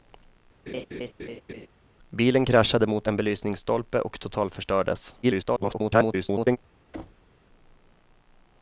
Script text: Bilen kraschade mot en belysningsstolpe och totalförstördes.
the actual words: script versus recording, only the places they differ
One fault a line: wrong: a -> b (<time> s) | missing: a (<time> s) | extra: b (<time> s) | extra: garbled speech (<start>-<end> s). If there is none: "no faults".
extra: garbled speech (5.2-6.6 s)